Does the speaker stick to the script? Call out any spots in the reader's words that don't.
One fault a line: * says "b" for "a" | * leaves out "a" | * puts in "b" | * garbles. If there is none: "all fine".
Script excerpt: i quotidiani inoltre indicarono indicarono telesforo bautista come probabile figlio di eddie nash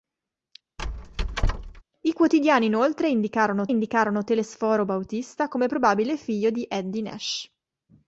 all fine